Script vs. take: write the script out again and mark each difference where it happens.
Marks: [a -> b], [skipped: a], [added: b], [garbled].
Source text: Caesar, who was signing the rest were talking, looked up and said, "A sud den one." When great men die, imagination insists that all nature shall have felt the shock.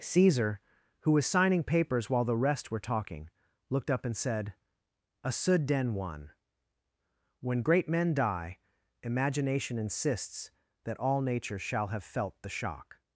Caesar, who was signing [added: papers while] the rest were talking, looked up and said, "A sud den one." When great men die, imagination insists that all nature shall have felt the shock.